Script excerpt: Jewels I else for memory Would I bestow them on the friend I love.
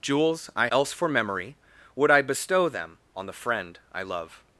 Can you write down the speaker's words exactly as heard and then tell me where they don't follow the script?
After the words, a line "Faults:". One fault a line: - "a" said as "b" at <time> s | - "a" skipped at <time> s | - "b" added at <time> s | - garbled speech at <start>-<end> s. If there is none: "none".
Jewels I else for memory Would I bestow them on the friend I love.
Faults:
none